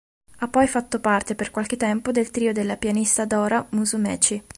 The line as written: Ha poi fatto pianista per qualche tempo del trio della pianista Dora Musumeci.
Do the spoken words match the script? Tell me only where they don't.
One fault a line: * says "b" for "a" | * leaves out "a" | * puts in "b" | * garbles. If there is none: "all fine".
* says "parte" for "pianista"